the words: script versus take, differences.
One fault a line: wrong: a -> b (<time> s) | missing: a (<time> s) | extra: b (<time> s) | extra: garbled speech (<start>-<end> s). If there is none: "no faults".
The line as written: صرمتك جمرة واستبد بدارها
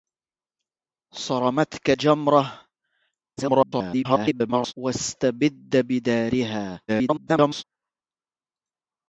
extra: garbled speech (3.4-4.7 s)
extra: garbled speech (6.9-7.6 s)